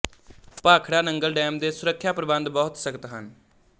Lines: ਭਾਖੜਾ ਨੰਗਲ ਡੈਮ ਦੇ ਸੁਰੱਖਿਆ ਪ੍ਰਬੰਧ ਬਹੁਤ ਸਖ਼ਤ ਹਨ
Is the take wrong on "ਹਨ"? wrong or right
right